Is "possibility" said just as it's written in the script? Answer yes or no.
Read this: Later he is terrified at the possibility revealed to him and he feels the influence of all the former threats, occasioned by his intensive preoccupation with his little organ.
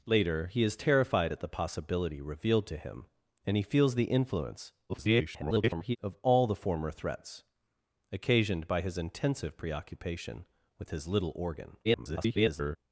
yes